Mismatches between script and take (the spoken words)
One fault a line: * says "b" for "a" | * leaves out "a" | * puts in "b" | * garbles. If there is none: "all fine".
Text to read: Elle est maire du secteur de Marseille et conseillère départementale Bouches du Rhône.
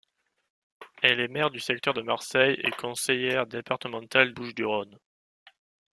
all fine